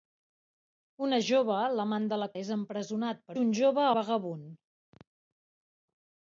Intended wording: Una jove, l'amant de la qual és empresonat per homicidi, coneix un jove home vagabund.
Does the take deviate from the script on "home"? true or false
true